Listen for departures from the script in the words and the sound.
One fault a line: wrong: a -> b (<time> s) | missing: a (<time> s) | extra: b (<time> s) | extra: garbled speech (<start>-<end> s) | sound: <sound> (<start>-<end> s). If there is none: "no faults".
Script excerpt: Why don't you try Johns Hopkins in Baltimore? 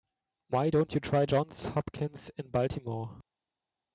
no faults